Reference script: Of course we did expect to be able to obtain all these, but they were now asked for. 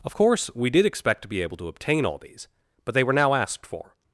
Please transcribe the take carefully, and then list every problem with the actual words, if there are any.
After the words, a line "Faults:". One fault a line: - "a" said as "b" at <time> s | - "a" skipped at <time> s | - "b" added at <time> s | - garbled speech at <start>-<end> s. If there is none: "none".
Of course we did expect to be able to obtain all these, but they were now asked for.
Faults:
none